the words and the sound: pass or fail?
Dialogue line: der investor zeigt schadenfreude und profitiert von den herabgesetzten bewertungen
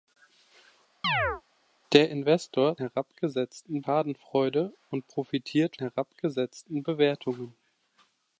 fail